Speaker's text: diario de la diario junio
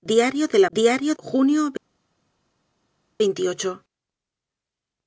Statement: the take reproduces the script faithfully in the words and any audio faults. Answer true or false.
true